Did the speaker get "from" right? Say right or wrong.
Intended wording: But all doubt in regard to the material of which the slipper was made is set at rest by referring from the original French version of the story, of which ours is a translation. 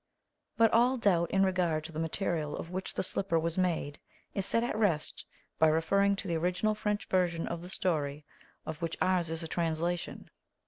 wrong